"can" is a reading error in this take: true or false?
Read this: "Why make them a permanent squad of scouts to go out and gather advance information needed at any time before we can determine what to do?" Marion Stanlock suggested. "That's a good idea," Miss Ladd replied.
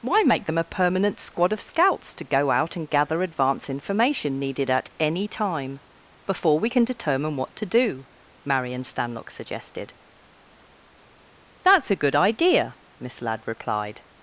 false